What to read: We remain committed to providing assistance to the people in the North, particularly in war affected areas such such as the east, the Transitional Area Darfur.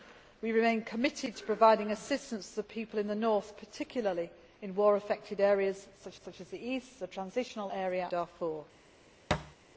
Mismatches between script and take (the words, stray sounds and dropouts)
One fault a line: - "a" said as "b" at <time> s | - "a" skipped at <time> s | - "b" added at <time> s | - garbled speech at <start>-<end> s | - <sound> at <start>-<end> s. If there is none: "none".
- thud at 9.3-9.6 s